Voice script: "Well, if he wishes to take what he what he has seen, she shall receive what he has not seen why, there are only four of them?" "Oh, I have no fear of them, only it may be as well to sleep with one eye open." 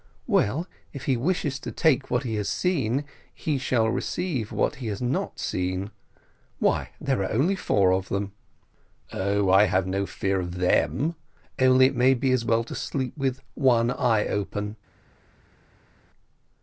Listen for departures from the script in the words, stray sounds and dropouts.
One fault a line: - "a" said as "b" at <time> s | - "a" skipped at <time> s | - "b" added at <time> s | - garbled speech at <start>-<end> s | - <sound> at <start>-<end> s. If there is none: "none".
- "what he" skipped at 2.3 s
- "she" said as "he" at 3.3 s